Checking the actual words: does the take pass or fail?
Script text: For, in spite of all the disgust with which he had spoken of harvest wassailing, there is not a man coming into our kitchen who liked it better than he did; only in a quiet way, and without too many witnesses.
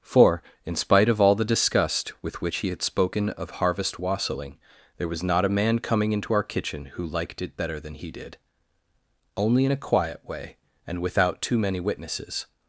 fail